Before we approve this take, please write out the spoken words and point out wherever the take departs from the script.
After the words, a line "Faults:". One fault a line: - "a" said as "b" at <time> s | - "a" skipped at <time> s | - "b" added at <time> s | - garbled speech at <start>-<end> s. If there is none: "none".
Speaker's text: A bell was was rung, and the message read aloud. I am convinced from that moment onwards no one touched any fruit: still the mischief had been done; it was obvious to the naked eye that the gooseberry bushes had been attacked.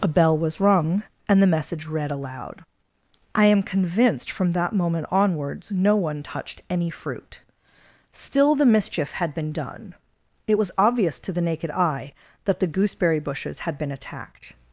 A bell was rung, and the message read aloud. I am convinced from that moment onwards no one touched any fruit: still the mischief had been done; it was obvious to the naked eye that the gooseberry bushes had been attacked.
Faults:
- "was" skipped at 0.6 s